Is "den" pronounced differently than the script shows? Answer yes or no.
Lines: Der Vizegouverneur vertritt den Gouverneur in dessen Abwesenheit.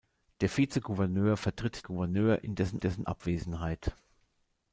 yes